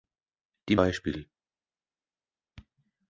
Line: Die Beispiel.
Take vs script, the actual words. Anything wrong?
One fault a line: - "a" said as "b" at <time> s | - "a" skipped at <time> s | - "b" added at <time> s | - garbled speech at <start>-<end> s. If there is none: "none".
none